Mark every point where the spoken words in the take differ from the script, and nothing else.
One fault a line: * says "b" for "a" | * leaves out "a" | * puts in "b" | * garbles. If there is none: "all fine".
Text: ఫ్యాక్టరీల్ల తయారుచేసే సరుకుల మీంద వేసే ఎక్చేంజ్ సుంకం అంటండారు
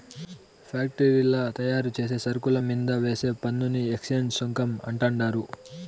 * puts in "పన్నుని"